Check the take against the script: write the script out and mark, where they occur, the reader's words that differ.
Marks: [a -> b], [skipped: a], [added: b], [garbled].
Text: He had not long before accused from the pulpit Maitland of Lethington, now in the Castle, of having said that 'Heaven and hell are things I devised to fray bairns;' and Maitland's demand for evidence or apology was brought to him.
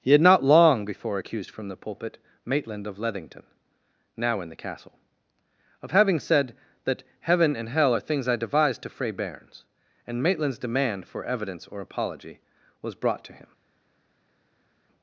He had not long before accused from the pulpit Maitland of Lethington, now in the Castle, of having said that 'Heaven and hell are things I devised to fray bairns;' and Maitland's demand for evidence or apology was brought to him.